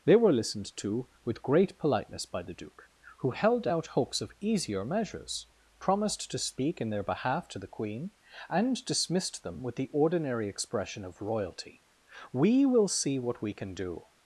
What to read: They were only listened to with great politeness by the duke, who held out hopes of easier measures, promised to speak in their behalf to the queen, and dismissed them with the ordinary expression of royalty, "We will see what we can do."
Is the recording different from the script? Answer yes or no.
yes